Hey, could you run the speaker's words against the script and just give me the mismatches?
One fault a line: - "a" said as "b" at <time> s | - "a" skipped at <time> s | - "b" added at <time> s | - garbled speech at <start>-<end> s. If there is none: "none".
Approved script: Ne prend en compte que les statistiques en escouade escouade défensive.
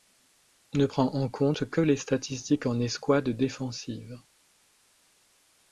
- "escouade" skipped at 3.3 s